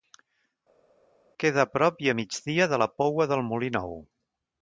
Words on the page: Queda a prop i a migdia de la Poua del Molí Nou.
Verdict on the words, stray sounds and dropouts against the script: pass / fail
pass